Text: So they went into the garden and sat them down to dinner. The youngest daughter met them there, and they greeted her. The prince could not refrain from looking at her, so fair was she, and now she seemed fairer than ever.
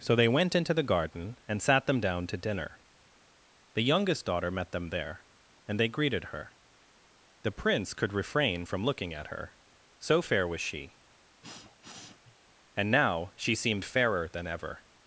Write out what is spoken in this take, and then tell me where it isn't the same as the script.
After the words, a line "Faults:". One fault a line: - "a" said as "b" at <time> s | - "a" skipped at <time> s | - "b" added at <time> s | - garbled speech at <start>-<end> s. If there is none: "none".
So they went into the garden and sat them down to dinner. The youngest daughter met them there, and they greeted her. The prince could refrain from looking at her, so fair was she, and now she seemed fairer than ever.
Faults:
- "not" skipped at 8.1 s